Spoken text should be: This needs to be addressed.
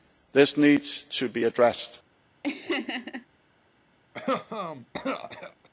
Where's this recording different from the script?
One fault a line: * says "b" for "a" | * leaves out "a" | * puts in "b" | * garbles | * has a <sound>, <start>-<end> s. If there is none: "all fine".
* has a laugh, 2.4-3.3 s
* has a cough, 4.1-5.7 s